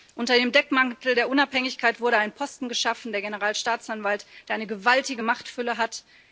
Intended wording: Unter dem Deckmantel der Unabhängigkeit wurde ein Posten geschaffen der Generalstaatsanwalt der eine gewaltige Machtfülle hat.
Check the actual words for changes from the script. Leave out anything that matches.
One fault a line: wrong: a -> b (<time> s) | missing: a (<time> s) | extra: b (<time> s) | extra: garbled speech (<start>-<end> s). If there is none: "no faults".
no faults